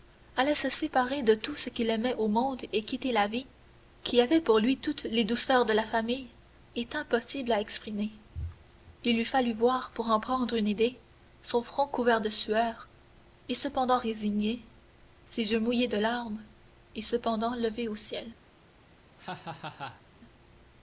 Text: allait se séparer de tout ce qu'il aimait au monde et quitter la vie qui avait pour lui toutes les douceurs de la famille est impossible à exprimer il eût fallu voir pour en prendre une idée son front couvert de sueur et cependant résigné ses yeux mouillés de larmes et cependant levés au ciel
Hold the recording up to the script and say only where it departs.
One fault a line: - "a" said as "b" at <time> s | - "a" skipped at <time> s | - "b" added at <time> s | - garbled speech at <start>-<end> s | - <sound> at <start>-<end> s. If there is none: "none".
- laugh at 19.2-20.0 s